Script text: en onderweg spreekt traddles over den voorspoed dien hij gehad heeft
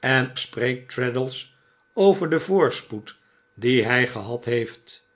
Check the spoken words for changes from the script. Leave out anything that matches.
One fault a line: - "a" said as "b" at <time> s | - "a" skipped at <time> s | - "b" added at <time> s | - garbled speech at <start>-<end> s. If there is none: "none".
- "onderweg" skipped at 0.3 s